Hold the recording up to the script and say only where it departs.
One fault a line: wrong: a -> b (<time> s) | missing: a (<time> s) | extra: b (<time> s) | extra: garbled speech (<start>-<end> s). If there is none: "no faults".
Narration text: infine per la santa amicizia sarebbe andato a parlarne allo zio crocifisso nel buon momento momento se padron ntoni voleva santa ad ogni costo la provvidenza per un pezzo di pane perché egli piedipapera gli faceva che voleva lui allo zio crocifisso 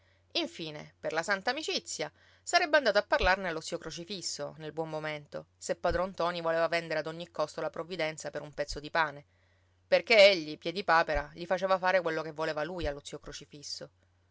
missing: momento (5.5 s)
wrong: santa -> vendere (6.7 s)
extra: fare quello (11.8 s)